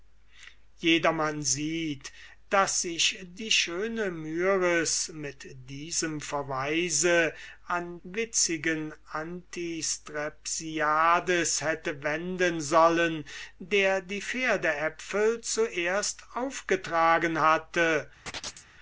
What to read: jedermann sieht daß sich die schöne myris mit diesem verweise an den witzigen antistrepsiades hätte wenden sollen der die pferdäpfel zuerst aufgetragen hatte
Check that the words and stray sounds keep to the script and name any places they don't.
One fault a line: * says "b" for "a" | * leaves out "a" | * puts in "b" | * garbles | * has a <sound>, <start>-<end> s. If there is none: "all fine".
* leaves out "den"
* has a chirp, 18.3-18.7 s